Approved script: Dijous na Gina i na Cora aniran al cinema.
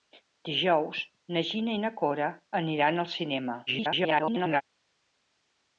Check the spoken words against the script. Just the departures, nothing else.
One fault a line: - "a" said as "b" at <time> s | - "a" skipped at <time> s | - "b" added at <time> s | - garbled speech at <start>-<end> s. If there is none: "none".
- garbled speech at 3.7-4.6 s